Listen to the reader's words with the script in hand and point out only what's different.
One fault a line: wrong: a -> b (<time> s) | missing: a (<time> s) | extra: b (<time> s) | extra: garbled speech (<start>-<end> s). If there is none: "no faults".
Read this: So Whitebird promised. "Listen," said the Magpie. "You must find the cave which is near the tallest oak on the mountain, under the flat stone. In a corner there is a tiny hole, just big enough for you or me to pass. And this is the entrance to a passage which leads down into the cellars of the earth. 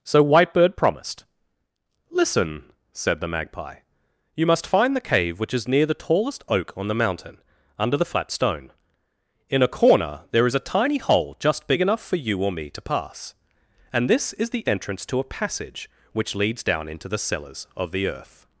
no faults